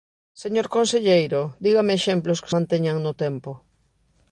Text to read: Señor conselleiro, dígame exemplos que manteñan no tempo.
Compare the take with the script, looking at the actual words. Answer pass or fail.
pass